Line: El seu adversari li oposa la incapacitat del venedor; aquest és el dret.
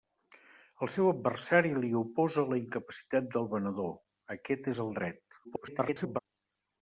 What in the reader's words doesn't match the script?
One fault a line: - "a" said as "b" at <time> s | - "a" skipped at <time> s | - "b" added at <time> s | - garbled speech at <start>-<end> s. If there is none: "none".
- garbled speech at 5.4-6.2 s